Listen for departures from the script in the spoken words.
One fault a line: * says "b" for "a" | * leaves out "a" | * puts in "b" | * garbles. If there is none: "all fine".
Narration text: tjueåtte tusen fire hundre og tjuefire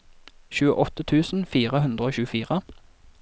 all fine